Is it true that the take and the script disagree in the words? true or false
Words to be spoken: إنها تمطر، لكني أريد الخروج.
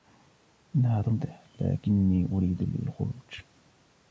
false